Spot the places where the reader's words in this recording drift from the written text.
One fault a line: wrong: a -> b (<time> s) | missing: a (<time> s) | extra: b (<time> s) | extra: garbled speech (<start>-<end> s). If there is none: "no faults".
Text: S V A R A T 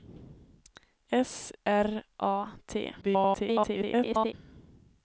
missing: V A (1.5 s)
extra: garbled speech (3.0-4.3 s)